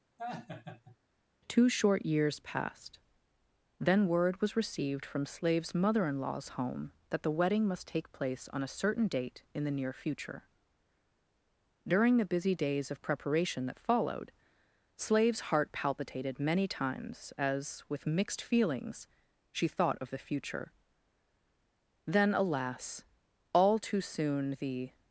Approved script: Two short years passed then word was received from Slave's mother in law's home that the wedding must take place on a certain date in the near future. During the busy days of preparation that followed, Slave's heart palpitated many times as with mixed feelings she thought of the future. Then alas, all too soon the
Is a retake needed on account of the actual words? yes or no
no